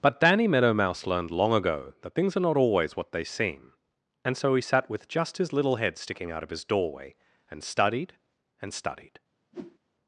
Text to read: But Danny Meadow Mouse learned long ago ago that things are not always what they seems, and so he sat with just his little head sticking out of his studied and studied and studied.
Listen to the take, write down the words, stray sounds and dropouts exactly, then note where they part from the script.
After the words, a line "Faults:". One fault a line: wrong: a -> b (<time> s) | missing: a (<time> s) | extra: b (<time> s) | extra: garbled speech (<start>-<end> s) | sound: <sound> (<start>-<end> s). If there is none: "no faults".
But Danny Meadow Mouse learned long ago that things are not always what they seem, and so he sat with just his little head sticking out of his doorway and studied and studied.
Faults:
missing: ago (1.9 s)
wrong: seems -> seem (3.2 s)
wrong: studied -> doorway (6.6 s)
sound: whoosh (9.5-9.8 s)